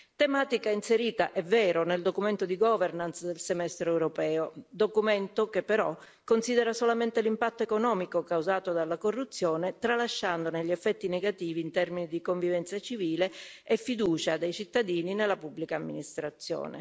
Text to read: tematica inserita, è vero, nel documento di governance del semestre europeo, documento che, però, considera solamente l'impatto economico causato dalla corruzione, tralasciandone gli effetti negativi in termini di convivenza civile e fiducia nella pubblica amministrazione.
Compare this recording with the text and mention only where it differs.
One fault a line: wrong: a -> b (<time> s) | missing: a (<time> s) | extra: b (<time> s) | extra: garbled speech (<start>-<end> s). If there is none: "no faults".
extra: dei cittadini (14.4 s)